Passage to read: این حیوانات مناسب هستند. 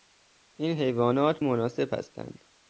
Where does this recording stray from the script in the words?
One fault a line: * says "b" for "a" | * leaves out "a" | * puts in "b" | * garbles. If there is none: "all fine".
all fine